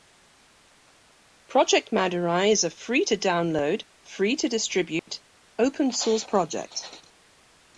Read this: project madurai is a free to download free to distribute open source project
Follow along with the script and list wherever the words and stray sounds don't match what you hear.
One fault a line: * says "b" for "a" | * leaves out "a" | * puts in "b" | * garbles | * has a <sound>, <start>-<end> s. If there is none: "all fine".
* has a dropout, 5.0-5.1 s